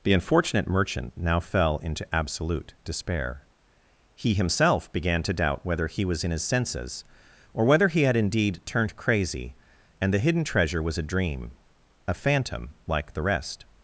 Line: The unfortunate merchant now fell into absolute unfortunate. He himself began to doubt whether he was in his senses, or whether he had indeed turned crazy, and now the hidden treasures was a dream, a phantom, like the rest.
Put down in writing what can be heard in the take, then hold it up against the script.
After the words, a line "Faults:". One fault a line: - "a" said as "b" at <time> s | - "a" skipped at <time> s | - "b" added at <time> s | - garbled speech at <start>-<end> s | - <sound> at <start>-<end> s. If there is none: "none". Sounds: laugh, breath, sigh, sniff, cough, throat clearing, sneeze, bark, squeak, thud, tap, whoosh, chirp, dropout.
The unfortunate merchant now fell into absolute despair. He himself began to doubt whether he was in his senses, or whether he had indeed turned crazy, and the hidden treasure was a dream, a phantom, like the rest.
Faults:
- "unfortunate" said as "despair" at 2.8 s
- "now" skipped at 10.1 s
- "treasures" said as "treasure" at 10.4 s